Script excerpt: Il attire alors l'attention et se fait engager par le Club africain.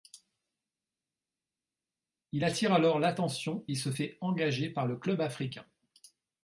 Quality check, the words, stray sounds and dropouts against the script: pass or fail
pass